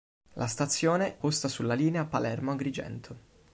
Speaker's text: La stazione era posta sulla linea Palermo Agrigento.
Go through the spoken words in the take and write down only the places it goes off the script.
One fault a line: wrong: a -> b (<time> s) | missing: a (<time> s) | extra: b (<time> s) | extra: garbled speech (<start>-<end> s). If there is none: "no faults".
missing: era (1.2 s)